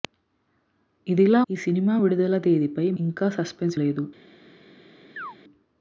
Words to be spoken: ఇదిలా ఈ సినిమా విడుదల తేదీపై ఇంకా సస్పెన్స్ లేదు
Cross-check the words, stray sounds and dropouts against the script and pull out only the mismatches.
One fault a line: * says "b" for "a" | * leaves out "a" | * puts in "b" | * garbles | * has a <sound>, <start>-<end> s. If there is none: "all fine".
* has a chirp, 5.2-5.4 s